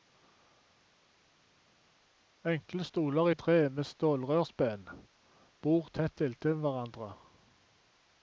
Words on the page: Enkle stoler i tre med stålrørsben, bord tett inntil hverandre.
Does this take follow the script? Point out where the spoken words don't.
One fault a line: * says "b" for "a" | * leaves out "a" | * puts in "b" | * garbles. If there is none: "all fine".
all fine